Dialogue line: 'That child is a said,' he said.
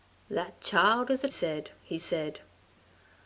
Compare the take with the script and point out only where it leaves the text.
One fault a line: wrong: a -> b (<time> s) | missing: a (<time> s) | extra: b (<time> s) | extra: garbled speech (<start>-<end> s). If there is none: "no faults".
no faults